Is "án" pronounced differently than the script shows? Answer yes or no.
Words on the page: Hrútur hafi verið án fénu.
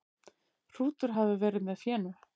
yes